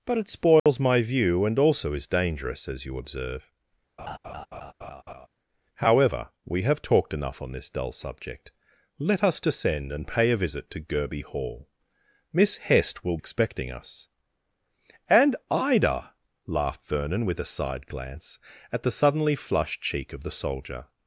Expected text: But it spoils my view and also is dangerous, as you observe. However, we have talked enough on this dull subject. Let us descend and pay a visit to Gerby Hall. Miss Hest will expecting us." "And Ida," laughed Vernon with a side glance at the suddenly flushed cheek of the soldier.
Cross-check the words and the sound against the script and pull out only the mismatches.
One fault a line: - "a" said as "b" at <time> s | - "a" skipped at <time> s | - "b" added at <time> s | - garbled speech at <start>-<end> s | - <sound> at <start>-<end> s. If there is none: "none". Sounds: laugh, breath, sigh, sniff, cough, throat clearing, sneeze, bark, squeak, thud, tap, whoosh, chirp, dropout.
- dropout at 0.6-0.7 s
- laugh at 4.0-5.3 s